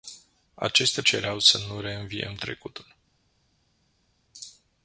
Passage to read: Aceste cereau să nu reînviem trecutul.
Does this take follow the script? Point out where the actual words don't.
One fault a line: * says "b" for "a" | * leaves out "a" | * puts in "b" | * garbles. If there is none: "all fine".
all fine